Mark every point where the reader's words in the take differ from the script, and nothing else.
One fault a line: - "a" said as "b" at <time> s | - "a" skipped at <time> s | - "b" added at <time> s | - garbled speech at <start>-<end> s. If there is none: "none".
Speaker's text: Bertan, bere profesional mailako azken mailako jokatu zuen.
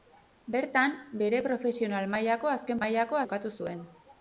none